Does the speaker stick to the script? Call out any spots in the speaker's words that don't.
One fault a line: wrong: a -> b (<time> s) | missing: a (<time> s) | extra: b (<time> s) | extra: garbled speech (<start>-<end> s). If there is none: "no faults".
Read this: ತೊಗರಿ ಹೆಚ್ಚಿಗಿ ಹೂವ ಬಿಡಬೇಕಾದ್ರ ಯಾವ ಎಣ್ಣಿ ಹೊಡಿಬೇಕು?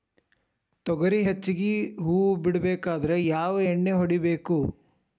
no faults